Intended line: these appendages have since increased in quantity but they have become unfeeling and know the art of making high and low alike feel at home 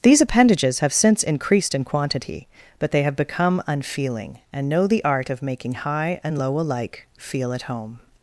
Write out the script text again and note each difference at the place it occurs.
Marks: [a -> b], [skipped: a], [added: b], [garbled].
these appendages have since increased in quantity but they have become unfeeling and know the art of making high and low alike feel at home